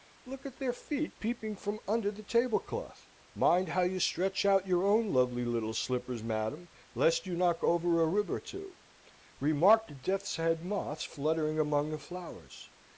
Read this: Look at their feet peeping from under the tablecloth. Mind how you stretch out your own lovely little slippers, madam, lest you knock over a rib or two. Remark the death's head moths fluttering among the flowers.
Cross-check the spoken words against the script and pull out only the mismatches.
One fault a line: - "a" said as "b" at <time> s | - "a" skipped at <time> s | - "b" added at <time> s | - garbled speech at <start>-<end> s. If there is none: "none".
none